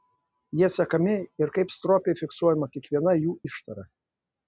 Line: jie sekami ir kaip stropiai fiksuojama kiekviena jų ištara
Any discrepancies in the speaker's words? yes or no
no